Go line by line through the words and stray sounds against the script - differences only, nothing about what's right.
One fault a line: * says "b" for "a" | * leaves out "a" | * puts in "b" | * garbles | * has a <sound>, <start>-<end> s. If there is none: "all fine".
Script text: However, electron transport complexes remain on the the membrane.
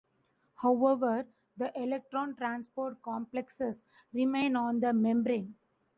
* puts in "the"
* leaves out "the"